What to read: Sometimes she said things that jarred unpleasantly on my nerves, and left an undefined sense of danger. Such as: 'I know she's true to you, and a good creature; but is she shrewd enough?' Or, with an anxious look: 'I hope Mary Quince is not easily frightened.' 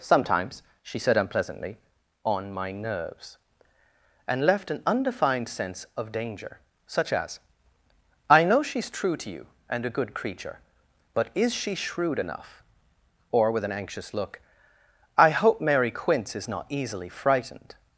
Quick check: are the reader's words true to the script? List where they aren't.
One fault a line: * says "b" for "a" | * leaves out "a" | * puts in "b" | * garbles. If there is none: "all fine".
* leaves out "things that jarred"